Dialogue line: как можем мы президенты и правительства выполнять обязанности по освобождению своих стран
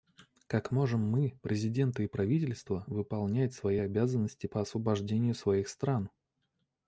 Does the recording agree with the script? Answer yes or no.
no